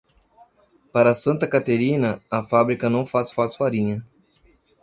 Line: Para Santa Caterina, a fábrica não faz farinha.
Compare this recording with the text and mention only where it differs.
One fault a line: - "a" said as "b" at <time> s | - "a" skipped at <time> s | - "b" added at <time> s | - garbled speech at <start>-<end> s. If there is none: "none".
- "faz" added at 3.3 s